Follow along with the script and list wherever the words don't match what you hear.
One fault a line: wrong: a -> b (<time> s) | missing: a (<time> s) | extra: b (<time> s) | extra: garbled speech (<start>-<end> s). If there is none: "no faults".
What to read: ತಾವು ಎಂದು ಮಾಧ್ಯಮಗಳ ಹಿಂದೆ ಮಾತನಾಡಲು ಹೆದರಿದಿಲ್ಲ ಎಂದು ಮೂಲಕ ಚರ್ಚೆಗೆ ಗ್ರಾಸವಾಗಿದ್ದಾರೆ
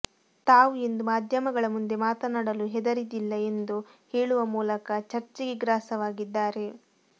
wrong: ಹಿಂದೆ -> ಮುಂದೆ (1.7 s)
extra: ಹೇಳುವ (4.1 s)